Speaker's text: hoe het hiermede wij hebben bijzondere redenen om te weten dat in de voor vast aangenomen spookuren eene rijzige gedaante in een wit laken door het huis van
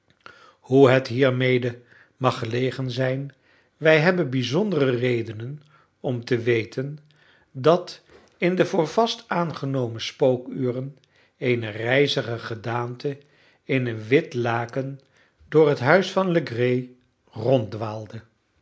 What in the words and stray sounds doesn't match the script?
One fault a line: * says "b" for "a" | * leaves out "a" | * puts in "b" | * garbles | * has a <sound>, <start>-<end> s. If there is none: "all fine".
* puts in "mag gelegen zijn"